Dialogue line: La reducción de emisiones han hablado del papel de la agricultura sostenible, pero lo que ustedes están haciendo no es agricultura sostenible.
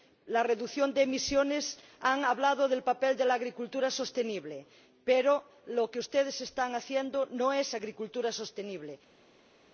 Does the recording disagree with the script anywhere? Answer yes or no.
no